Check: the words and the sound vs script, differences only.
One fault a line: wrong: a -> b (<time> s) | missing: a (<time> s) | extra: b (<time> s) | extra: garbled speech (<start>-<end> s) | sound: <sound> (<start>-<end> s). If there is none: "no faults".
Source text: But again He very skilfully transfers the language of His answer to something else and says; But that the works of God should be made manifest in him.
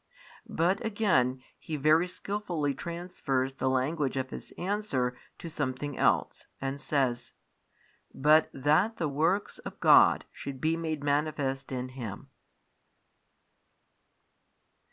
no faults